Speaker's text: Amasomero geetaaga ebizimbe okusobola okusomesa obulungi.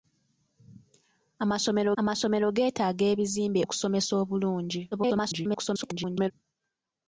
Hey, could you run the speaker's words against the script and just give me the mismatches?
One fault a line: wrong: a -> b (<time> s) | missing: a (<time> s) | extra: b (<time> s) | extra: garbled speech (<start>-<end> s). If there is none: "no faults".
extra: amasomero (2.0 s)
missing: okusobola (3.6 s)
extra: garbled speech (4.9-6.3 s)